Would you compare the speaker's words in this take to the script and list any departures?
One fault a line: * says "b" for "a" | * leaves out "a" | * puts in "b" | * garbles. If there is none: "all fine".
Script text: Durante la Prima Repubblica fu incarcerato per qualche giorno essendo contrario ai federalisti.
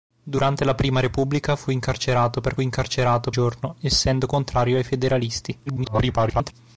* says "incarcerato" for "qualche"
* garbles